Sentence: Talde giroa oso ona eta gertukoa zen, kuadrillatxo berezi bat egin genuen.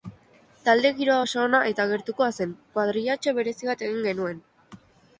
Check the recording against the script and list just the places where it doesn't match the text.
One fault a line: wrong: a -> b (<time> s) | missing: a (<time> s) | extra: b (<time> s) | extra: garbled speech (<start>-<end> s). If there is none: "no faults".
no faults